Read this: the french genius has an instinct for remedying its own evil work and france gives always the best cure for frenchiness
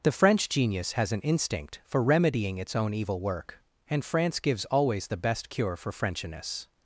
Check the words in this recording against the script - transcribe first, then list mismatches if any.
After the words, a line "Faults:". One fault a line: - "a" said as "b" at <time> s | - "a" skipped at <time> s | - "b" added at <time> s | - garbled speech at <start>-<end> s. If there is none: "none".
the french genius has an instinct for remedying its own evil work and france gives always the best cure for frenchiness
Faults:
none